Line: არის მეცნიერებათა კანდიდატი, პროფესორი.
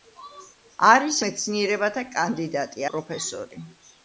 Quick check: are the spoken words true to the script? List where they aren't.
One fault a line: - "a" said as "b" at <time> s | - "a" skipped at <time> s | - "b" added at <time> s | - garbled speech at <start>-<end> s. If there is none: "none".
none